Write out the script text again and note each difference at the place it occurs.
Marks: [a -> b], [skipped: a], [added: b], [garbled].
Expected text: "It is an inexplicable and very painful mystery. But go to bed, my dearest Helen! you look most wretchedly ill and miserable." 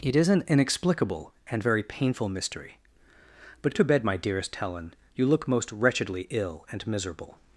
"It is an inexplicable and very painful mystery. But [skipped: go] to bed, my dearest Helen! you look most wretchedly ill and miserable."